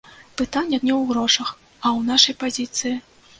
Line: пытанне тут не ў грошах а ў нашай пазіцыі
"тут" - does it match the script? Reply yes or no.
no